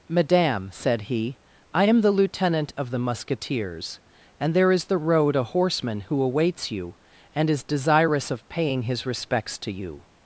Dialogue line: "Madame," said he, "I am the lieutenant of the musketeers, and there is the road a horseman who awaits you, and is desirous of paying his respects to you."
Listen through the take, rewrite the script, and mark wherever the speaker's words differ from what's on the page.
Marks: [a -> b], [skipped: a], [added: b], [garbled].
"Madame," said he, "I am the lieutenant of the musketeers, and there is the road a horseman who awaits you, and is desirous of paying his respects to you."